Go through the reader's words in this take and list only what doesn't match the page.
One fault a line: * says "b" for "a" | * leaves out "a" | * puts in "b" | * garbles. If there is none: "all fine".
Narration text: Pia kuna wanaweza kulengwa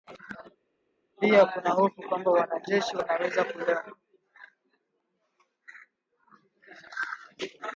* puts in "hofu kwamba wanajeshi"